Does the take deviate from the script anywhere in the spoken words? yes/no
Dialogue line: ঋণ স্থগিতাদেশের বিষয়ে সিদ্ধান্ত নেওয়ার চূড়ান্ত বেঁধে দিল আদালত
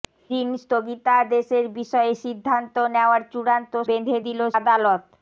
no